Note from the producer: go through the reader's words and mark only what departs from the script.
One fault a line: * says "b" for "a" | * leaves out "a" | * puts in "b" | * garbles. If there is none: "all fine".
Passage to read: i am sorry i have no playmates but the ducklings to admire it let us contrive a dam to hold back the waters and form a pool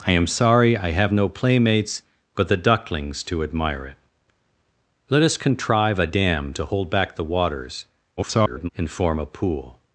* garbles